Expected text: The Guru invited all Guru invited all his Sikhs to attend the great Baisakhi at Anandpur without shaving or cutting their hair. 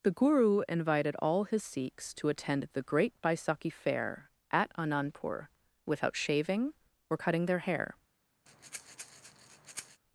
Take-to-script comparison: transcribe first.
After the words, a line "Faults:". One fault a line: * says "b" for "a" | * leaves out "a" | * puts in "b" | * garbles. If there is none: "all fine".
The Guru invited all his Sikhs to attend the great Baisakhi fair at Anandpur without shaving or cutting their hair.
Faults:
* leaves out "Guru invited all"
* puts in "fair"